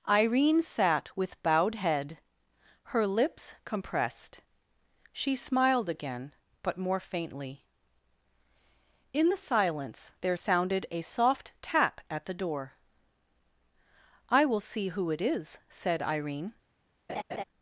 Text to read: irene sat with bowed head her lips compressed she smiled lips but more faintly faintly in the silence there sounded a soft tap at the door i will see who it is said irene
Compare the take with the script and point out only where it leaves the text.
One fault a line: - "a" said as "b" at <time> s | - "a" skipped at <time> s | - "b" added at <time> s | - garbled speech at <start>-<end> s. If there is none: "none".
- "lips" said as "again" at 5.9 s
- "faintly" skipped at 7.7 s